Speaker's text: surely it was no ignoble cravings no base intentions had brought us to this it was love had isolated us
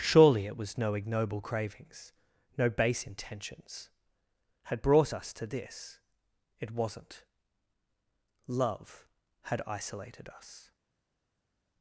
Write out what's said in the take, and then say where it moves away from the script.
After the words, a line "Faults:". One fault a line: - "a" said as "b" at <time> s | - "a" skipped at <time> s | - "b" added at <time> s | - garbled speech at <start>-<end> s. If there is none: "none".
surely it was no ignoble cravings no base intentions had brought us to this it wasn't love had isolated us
Faults:
- "was" said as "wasn't" at 6.7 s